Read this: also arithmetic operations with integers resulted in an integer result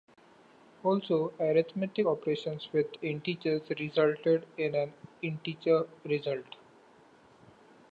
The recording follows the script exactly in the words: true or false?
true